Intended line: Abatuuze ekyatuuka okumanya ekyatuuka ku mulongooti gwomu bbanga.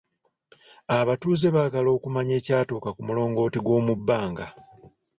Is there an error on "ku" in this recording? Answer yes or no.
no